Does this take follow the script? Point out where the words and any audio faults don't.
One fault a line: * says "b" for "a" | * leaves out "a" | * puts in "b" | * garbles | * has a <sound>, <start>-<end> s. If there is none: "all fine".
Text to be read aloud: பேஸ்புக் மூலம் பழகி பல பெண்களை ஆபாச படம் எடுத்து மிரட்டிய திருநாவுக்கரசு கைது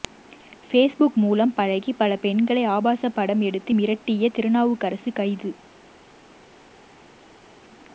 all fine